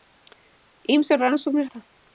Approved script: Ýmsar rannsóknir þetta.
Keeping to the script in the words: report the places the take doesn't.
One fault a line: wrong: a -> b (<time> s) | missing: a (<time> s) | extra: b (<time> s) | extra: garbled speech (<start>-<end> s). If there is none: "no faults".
no faults